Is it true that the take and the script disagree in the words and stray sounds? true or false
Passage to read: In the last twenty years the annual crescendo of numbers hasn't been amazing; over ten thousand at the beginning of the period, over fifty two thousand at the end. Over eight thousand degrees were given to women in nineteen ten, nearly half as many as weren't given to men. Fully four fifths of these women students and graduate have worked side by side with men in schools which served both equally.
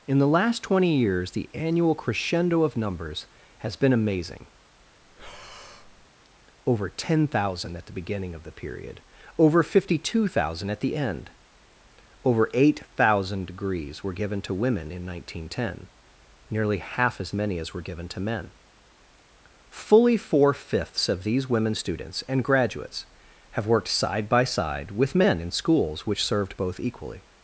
true